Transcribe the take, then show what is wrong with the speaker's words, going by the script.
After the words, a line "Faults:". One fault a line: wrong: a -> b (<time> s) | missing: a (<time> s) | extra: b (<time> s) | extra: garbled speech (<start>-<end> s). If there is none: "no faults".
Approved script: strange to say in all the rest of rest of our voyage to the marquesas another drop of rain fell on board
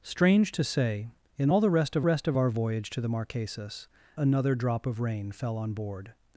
strange to say in all the rest of rest of our voyage to the marquesas another drop of rain fell on board
Faults:
no faults